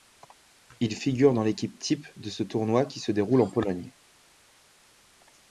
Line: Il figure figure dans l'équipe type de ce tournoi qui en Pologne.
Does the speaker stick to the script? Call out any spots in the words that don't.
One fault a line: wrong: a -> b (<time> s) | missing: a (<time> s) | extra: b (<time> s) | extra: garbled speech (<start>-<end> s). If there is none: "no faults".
missing: figure (1.3 s)
extra: se déroule (3.0 s)